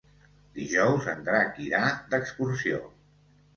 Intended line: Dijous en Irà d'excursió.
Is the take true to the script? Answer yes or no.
no